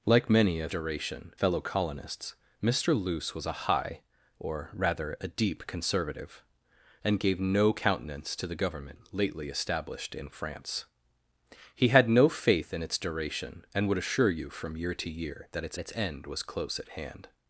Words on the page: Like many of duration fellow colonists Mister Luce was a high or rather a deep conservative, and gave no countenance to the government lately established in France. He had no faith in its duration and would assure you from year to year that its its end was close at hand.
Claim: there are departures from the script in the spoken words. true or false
false